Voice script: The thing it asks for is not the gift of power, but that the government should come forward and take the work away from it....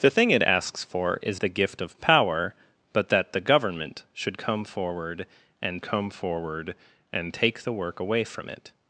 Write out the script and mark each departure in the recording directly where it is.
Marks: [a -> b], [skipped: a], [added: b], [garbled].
The thing it asks for is [skipped: not] the gift of power, but that the government should come forward and [added: come forward and] take the work away from it....